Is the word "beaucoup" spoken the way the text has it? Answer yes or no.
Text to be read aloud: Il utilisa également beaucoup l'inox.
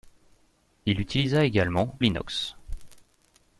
no